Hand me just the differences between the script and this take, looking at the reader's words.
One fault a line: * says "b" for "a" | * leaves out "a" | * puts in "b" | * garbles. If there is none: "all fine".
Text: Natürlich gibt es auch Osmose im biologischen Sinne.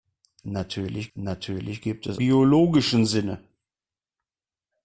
* puts in "natürlich"
* leaves out "auch Osmose im"